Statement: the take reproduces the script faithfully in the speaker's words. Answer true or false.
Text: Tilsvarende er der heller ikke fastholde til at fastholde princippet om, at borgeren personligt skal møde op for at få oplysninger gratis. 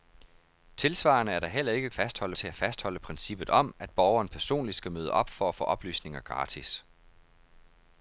true